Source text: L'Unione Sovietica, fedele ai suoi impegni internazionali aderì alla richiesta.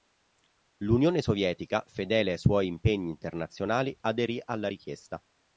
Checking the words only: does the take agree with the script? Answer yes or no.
yes